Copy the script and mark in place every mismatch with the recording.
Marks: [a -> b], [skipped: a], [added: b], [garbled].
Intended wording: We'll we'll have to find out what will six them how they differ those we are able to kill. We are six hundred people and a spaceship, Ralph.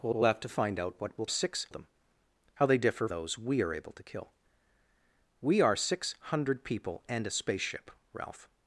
We'll we'll have to find out what will six them how they differ those we are able to kill. We are six hundred people and a spaceship, Ralph.